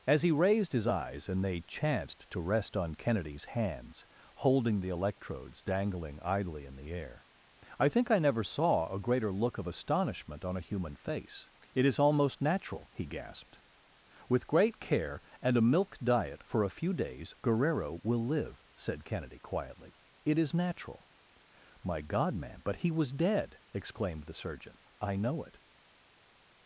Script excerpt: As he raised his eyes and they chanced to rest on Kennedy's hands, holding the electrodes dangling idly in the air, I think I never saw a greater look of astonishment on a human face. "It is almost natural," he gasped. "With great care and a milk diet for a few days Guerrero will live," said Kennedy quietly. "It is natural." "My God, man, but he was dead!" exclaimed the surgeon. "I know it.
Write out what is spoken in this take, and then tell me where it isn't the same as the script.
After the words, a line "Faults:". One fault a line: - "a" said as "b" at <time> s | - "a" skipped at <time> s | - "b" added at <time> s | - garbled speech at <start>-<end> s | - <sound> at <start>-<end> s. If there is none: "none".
As he raised his eyes and they chanced to rest on Kennedy's hands, holding the electrodes dangling idly in the air, I think I never saw a greater look of astonishment on a human face. "It is almost natural," he gasped. "With great care and a milk diet for a few days Guerrero will live," said Kennedy quietly. "It is natural." "My God, man, but he was dead!" exclaimed the surgeon. "I know it.
Faults:
none